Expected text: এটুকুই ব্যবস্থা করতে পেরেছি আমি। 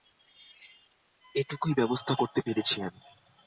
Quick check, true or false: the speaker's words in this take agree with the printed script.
true